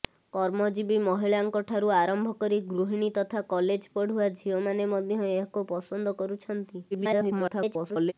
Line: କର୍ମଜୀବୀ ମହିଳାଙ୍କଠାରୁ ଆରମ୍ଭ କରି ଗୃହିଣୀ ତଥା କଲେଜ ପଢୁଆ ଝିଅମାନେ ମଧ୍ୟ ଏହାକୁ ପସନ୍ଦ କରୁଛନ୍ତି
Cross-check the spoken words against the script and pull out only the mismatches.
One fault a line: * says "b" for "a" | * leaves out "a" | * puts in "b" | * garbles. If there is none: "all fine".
* garbles